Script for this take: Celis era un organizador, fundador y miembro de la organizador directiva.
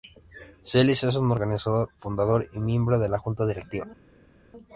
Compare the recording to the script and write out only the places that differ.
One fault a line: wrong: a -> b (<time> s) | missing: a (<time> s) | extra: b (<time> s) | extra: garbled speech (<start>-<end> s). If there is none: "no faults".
wrong: era -> es (1.0 s)
wrong: organizador -> junta (3.2 s)